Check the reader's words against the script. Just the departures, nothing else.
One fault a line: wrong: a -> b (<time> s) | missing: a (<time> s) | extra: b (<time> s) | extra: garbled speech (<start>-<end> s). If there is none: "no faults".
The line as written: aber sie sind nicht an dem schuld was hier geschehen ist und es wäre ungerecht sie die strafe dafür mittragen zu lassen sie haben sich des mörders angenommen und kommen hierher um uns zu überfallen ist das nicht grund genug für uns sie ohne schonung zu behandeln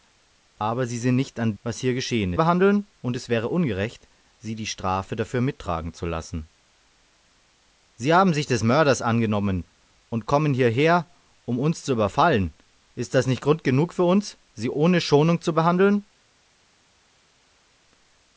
missing: dem schuld (1.5 s)
wrong: ist -> behandeln (2.4 s)